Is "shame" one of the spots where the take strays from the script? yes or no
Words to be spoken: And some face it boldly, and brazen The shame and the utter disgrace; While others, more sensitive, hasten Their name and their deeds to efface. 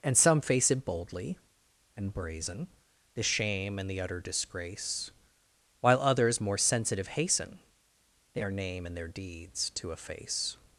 no